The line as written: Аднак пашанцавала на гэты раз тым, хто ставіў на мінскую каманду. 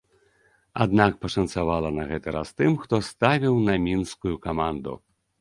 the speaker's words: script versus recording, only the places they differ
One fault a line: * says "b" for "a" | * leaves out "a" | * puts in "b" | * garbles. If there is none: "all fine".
all fine